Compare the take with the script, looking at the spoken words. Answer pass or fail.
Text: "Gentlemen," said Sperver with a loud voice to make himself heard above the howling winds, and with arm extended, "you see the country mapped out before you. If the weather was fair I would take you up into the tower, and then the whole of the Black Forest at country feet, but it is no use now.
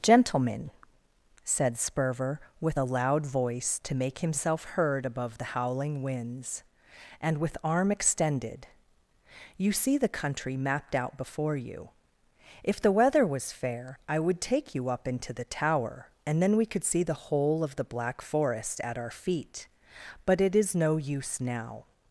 fail